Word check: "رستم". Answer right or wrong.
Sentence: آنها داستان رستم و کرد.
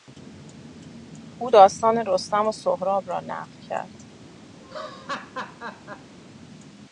right